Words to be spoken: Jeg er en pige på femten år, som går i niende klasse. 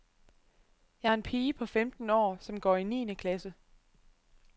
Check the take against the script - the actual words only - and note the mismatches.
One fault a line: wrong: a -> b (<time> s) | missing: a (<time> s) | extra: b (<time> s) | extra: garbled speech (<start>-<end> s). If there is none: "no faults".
no faults